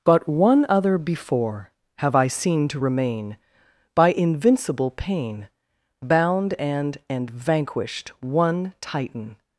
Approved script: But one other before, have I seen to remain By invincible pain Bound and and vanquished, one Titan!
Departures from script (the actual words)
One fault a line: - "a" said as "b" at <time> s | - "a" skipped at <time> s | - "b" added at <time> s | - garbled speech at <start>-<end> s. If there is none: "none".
none